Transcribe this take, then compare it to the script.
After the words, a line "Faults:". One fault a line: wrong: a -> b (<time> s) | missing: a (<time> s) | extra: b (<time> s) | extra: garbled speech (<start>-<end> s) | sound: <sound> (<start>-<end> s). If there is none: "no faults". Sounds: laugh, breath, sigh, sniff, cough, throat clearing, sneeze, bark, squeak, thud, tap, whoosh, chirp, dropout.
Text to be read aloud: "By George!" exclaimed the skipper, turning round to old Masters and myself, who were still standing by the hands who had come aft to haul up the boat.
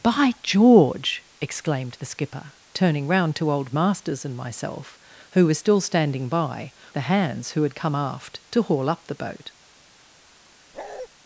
"By George!" exclaimed the skipper, turning round to old Masters and myself, who were still standing by the hands who had come aft to haul up the boat.
Faults:
sound: bark (10.7-11.1 s)